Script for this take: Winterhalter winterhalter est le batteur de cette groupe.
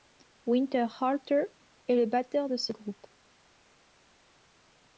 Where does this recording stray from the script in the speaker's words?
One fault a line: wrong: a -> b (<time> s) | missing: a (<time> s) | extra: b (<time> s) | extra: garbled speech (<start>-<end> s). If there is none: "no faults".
missing: winterhalter (1.4 s)
wrong: cette -> ce (2.6 s)